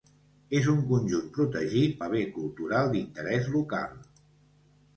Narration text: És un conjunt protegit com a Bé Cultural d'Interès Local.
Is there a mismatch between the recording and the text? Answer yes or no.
yes